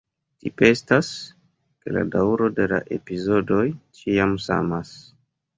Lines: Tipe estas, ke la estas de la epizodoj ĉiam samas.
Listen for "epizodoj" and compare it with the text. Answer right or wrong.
right